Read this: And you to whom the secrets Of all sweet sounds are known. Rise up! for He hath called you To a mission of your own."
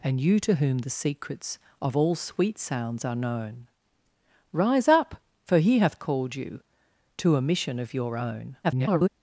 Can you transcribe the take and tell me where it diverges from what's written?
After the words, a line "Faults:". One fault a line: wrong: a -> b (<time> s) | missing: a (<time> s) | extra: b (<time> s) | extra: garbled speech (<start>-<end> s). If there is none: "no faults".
And you to whom the secrets Of all sweet sounds are known. Rise up! for He hath called you To a mission of your own." [garbled]
Faults:
extra: garbled speech (8.6-9.1 s)